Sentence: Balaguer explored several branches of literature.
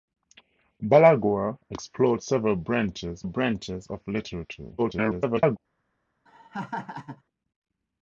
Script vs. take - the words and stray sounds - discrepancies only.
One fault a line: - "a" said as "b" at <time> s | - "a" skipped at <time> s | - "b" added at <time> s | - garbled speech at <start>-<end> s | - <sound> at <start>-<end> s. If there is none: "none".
- "branches" added at 3.2 s
- garbled speech at 4.8-5.6 s
- laugh at 6.3-7.2 s